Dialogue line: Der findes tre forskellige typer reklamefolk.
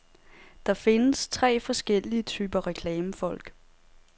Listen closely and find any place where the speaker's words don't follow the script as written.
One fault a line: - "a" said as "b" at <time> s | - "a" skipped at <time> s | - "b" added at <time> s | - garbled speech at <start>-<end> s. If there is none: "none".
none